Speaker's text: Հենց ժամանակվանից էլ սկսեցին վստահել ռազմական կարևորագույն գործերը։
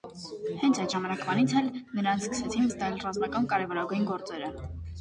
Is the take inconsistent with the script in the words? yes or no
yes